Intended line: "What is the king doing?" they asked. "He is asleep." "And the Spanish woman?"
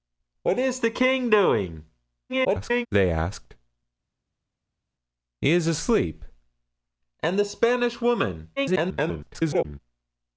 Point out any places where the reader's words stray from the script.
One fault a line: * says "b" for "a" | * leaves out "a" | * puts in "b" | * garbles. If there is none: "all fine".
* garbles
* garbles